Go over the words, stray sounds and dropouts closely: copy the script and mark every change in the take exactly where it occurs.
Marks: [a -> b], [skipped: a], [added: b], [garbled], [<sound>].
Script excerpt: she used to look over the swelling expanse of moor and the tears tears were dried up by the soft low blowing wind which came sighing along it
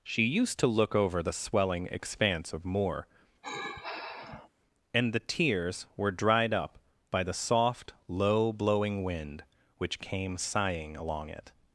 she used to look over the swelling expanse of moor [sigh] and the tears [skipped: tears] were dried up by the soft low blowing wind which came sighing along it